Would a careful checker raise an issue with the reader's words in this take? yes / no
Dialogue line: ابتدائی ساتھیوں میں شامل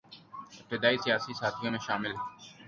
yes